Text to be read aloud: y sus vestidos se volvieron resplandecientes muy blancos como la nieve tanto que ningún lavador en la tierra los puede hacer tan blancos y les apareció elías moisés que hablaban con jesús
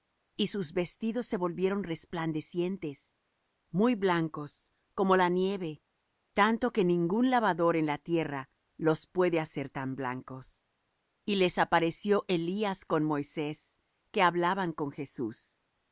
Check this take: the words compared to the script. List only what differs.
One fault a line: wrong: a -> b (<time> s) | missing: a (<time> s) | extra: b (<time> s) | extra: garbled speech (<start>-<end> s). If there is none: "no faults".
extra: con (12.8 s)